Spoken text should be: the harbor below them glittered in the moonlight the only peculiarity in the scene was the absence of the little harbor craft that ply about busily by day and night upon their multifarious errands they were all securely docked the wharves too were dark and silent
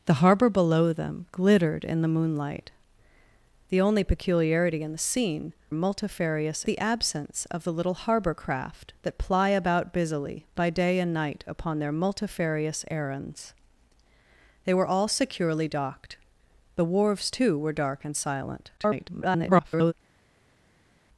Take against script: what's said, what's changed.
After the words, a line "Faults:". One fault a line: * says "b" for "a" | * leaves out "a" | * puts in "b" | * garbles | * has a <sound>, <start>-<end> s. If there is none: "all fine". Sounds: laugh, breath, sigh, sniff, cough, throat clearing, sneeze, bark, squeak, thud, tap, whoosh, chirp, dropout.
the harbor below them glittered in the moonlight the only peculiarity in the scene multifarious the absence of the little harbor craft that ply about busily by day and night upon their multifarious errands they were all securely docked the wharves too were dark and silent [garbled]
Faults:
* says "multifarious" for "was"
* garbles